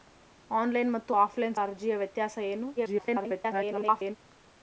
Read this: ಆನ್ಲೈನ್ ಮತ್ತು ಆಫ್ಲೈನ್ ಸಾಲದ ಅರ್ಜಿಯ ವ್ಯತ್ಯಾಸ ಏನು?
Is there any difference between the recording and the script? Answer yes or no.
yes